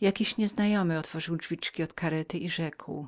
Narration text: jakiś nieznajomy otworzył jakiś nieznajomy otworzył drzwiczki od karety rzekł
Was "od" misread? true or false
false